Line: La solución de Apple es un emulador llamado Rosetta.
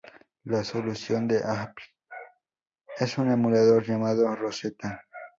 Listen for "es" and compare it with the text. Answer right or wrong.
right